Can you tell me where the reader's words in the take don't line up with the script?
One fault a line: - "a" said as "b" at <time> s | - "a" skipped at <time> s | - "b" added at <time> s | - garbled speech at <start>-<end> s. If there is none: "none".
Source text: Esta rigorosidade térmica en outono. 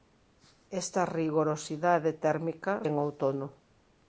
none